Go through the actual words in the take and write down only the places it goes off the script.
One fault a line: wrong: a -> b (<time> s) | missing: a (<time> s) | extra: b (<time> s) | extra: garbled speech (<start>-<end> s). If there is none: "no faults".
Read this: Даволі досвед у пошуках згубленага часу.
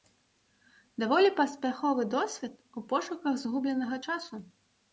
extra: паспяховы (1.4 s)